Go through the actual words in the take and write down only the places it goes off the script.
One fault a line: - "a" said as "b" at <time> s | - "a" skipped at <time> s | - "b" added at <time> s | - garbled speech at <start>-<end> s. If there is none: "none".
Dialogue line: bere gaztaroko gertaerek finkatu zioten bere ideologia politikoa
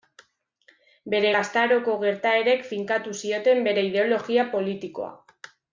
none